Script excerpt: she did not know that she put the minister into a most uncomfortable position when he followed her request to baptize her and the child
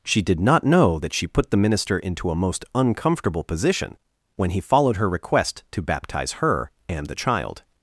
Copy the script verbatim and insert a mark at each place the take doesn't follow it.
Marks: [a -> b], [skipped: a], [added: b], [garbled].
she did not know that she put the minister into a most uncomfortable position when he followed her request to baptize her and the child